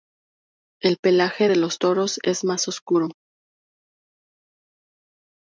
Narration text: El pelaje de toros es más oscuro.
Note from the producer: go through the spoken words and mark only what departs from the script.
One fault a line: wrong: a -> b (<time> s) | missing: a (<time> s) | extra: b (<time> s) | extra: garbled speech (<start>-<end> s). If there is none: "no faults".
extra: los (1.6 s)